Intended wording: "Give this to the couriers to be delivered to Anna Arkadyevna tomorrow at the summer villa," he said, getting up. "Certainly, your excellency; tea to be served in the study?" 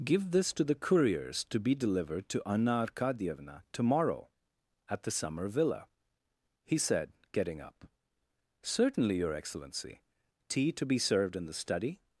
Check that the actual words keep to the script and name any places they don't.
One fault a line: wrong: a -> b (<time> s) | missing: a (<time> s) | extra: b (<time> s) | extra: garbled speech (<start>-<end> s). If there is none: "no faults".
no faults